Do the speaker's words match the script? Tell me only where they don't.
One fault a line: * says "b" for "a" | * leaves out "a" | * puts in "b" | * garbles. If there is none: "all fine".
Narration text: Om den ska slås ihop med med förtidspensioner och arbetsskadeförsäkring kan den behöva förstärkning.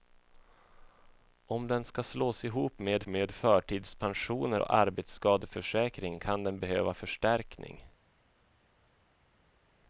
all fine